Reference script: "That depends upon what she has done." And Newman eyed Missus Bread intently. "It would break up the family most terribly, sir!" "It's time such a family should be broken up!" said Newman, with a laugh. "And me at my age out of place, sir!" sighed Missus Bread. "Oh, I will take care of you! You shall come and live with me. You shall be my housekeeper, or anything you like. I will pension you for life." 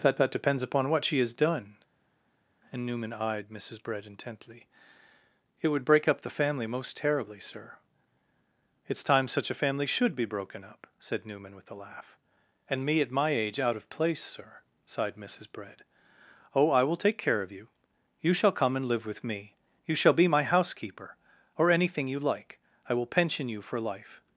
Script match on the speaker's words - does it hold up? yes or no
no